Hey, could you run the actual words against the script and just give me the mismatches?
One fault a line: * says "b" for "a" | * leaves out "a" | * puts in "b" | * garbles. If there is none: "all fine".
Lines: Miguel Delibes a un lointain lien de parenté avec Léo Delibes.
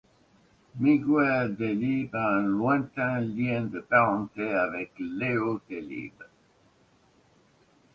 all fine